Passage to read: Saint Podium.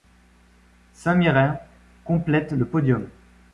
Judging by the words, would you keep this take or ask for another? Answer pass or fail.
fail